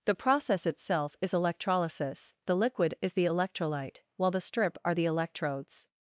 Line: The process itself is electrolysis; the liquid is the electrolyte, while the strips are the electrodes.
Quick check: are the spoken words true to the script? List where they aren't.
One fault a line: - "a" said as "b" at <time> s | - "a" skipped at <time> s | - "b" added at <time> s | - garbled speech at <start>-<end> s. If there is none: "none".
- "strips" said as "strip" at 4.4 s